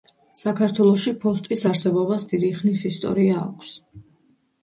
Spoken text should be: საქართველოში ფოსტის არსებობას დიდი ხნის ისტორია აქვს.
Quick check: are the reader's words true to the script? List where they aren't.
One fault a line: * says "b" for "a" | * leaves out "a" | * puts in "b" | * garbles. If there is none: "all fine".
all fine